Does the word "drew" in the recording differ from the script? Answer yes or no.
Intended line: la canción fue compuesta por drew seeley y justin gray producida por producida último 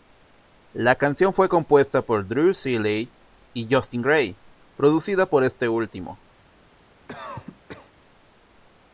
no